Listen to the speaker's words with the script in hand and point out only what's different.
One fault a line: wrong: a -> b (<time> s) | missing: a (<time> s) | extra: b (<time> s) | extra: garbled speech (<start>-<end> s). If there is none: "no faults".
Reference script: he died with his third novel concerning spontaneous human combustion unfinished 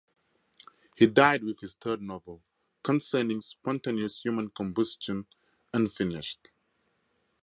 no faults